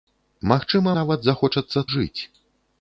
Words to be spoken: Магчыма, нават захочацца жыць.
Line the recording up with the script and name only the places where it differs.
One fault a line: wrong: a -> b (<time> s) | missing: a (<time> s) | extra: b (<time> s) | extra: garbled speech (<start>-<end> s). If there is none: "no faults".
no faults